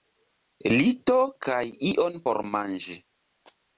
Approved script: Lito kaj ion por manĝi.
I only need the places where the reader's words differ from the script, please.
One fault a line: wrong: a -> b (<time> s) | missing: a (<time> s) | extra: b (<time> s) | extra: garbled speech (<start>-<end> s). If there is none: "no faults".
no faults